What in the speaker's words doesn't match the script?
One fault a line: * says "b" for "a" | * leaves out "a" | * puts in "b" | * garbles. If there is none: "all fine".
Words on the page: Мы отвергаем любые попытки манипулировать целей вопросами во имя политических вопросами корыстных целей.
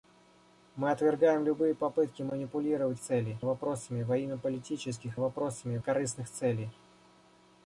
all fine